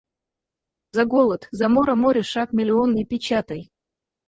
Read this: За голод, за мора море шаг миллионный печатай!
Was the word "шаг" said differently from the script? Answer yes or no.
no